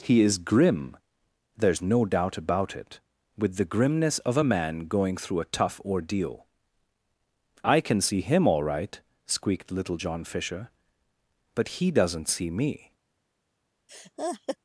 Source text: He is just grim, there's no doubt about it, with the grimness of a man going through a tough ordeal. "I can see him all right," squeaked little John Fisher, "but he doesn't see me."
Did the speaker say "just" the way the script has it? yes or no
no